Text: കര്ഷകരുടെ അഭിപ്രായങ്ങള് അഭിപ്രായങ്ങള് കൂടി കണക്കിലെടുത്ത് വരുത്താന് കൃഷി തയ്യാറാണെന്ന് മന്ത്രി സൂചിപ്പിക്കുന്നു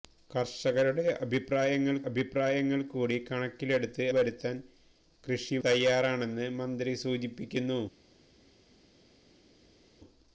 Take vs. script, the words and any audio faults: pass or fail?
pass